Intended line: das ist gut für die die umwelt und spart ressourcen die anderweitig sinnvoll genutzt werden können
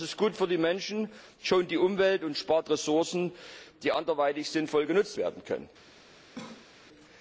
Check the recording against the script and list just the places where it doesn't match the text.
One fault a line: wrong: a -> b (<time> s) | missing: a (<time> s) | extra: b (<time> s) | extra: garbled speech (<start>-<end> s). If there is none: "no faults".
extra: menschen schont (0.6 s)